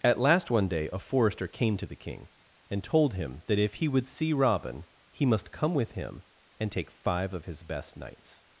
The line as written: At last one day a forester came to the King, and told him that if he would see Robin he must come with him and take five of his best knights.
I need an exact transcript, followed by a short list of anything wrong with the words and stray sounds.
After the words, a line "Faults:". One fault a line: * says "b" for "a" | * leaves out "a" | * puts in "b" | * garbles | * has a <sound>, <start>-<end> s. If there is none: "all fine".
At last one day a forester came to the King, and told him that if he would see Robin he must come with him and take five of his best knights.
Faults:
all fine